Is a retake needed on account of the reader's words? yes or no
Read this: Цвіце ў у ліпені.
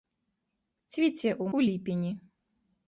no